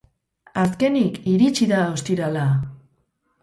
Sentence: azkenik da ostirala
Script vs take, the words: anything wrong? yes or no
yes